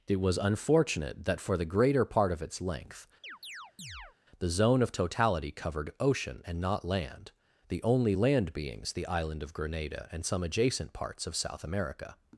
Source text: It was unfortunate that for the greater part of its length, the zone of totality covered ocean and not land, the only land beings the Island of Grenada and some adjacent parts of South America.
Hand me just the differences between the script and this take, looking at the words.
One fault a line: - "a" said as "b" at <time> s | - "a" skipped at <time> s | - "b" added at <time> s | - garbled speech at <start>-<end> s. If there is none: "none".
none